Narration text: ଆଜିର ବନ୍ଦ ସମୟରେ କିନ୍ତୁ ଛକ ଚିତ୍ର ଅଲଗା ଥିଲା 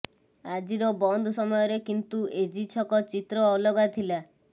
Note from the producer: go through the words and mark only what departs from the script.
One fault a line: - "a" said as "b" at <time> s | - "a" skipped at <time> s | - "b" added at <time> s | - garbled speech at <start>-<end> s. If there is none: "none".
- "ଏଜି" added at 2.4 s